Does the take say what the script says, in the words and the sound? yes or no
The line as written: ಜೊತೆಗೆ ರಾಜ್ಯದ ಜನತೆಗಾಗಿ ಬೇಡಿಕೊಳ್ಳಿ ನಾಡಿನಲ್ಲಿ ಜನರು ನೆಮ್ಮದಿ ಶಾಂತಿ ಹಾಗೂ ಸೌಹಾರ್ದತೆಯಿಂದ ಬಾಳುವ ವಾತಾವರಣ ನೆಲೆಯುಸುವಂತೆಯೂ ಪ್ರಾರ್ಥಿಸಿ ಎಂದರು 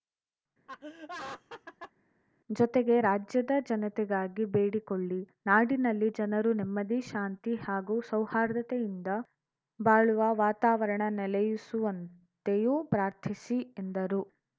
no